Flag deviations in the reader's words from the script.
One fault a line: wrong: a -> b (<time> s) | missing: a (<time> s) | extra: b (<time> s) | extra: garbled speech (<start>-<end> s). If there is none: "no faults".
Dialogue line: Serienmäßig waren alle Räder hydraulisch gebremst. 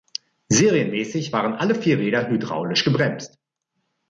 extra: vier (1.8 s)